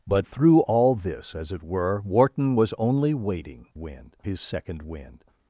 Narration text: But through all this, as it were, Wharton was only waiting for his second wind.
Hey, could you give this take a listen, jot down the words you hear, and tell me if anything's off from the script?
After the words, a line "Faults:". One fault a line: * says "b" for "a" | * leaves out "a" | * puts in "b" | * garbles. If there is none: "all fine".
But through all this, as it were, Wharton was only waiting wind his second wind.
Faults:
* says "wind" for "for"